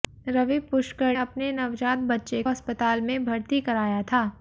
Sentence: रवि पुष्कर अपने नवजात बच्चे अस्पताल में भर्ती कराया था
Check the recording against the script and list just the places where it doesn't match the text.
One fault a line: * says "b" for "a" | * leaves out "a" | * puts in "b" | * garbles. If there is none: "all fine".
all fine